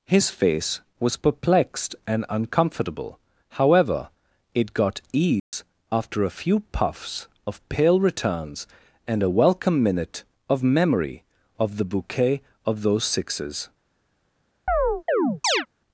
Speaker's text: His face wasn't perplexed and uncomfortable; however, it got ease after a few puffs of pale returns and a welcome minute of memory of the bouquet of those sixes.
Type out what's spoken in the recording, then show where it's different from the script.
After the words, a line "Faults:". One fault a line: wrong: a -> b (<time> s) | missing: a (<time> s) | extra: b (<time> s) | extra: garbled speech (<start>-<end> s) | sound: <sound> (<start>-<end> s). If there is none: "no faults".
His face was perplexed and uncomfortable; however, it got ease after a few puffs of pale returns and a welcome minute of memory of the bouquet of those sixes.
Faults:
wrong: wasn't -> was (1.0 s)
sound: dropout (5.4-5.5 s)
sound: chirp (14.7-15.7 s)